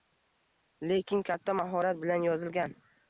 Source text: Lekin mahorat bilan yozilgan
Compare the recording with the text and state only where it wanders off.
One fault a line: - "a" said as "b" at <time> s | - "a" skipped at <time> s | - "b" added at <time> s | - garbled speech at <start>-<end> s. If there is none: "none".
- "katta" added at 1.3 s